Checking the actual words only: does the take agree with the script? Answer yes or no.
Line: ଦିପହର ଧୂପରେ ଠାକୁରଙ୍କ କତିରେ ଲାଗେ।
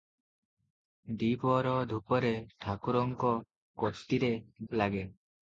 yes